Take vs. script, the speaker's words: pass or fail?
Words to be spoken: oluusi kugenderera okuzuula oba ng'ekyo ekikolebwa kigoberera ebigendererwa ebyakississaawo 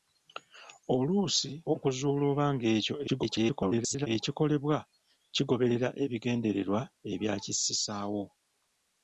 fail